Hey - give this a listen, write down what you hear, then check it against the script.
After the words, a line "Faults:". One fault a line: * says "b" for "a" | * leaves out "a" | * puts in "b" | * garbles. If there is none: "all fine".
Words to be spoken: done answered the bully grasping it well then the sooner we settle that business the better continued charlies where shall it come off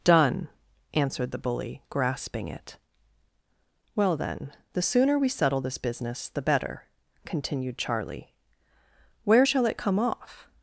done answered the bully grasping it well then the sooner we settle this business the better continued charlie where shall it come off
Faults:
* says "this" for "that"
* says "charlie" for "charlies"